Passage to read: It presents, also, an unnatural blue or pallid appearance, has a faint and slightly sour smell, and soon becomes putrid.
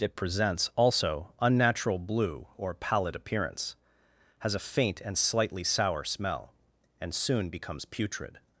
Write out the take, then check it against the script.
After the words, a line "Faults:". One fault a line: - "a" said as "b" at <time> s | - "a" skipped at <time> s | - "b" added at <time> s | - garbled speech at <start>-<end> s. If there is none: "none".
It presents, also, unnatural blue or pallid appearance, has a faint and slightly sour smell, and soon becomes putrid.
Faults:
- "an" skipped at 1.3 s